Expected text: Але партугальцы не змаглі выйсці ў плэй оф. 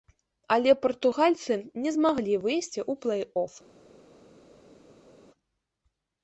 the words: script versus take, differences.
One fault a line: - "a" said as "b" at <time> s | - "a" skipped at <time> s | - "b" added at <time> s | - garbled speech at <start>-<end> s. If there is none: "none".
none